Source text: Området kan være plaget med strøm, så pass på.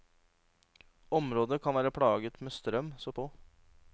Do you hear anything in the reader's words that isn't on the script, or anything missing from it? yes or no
yes